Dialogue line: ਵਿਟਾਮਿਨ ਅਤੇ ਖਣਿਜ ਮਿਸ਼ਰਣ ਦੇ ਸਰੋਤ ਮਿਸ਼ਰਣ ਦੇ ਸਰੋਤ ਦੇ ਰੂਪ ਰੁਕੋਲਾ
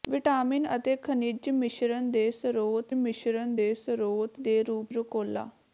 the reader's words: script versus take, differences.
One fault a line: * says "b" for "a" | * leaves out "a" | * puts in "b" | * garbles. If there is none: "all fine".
all fine